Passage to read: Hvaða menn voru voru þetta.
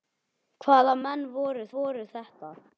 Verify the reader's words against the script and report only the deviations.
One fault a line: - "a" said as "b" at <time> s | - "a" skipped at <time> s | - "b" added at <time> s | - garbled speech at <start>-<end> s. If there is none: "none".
none